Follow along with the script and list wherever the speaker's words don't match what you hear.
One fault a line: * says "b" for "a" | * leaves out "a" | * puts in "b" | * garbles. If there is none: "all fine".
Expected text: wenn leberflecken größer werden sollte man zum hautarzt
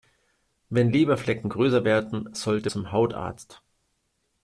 * leaves out "man"